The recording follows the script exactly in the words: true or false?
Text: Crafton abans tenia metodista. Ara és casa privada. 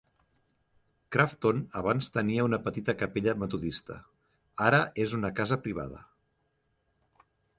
false